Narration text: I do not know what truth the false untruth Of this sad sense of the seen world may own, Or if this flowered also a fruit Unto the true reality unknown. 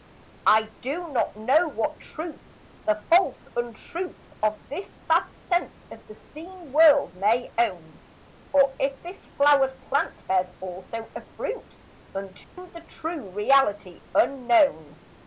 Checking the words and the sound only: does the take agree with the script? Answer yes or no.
no